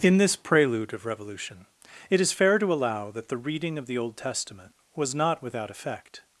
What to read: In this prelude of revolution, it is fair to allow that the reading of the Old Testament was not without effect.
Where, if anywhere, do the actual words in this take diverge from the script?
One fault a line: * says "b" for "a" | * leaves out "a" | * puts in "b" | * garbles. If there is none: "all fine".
all fine